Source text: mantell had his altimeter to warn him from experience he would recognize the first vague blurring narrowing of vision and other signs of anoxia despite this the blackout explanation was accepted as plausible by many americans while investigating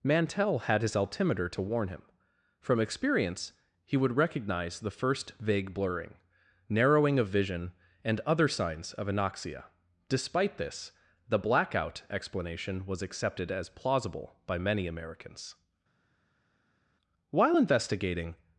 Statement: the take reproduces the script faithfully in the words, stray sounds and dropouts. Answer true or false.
true